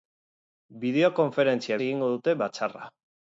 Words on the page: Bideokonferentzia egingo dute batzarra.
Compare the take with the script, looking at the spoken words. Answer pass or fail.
pass